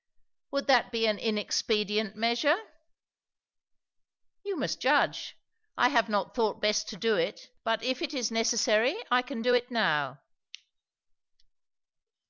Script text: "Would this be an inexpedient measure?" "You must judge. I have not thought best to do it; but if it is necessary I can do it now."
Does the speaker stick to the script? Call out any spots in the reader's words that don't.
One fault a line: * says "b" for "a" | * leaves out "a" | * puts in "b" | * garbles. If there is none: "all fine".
* says "that" for "this"